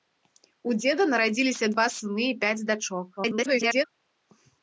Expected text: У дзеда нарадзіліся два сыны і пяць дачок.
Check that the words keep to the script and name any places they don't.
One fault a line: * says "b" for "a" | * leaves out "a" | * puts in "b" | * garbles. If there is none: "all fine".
* garbles